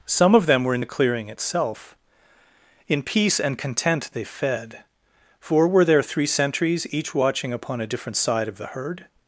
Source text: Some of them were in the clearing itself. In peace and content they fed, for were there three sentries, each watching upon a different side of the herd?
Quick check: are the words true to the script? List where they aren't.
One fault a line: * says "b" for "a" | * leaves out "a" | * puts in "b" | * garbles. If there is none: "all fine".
all fine